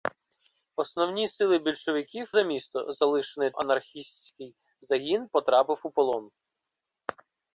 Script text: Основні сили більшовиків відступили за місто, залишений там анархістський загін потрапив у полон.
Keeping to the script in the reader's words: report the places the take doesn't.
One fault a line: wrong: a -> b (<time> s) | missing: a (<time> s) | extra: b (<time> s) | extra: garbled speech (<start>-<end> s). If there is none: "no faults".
missing: відступили (2.3 s)
missing: там (3.5 s)